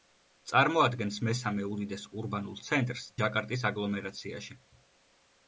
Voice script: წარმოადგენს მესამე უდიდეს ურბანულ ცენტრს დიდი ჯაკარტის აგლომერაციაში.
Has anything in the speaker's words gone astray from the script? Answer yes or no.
yes